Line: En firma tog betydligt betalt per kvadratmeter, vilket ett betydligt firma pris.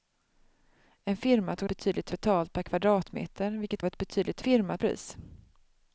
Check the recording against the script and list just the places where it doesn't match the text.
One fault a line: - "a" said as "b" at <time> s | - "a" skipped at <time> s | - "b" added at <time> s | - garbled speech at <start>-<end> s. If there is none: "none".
none